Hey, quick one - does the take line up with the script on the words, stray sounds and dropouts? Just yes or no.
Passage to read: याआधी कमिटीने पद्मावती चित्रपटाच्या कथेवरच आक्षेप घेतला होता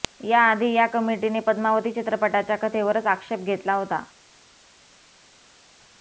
no